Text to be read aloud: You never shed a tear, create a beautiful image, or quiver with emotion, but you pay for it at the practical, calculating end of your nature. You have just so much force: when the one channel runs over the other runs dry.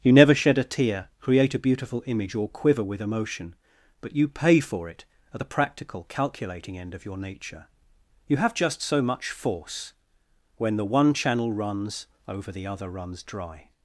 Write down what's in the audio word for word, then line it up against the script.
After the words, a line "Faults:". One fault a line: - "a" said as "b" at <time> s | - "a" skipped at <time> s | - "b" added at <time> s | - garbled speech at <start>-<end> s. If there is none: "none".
You never shed a tear, create a beautiful image, or quiver with emotion, but you pay for it at the practical, calculating end of your nature. You have just so much force: when the one channel runs over the other runs dry.
Faults:
none